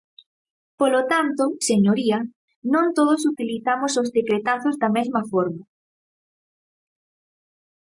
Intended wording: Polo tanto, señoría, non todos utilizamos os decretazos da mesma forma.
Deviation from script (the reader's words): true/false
false